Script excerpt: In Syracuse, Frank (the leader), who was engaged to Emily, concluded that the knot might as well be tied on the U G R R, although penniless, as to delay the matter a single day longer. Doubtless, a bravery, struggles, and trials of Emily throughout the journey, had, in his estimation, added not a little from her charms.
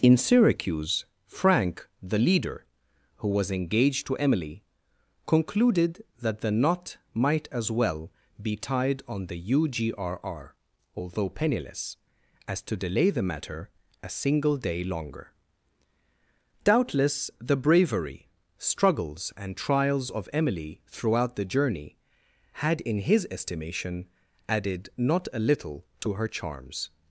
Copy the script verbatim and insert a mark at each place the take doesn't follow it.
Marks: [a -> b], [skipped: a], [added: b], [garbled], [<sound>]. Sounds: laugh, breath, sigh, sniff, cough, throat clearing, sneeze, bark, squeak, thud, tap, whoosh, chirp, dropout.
In Syracuse, Frank (the leader), who was engaged to Emily, concluded that the knot might as well be tied on the U G R R, although penniless, as to delay the matter a single day longer. Doubtless, [a -> the] bravery, struggles, and trials of Emily throughout the journey, had, in his estimation, added not a little [from -> to] her charms.